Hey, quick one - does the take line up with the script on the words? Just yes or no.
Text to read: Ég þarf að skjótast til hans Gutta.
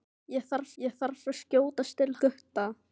no